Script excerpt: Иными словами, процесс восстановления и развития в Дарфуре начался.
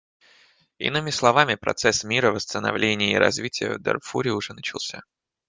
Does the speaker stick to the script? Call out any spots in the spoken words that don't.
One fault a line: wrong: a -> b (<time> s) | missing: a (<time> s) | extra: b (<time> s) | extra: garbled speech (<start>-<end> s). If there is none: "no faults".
extra: мира (2.0 s)
extra: уже (4.3 s)